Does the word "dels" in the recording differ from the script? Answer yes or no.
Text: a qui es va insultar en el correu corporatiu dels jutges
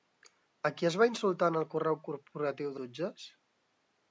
yes